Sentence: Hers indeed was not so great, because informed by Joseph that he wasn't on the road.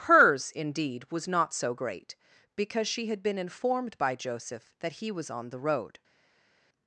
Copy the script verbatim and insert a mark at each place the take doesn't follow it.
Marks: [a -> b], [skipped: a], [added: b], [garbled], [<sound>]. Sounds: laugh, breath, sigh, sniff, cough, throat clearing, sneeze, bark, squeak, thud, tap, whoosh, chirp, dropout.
Hers indeed was not so great, because [added: she had been] informed by Joseph that he [wasn't -> was] on the road.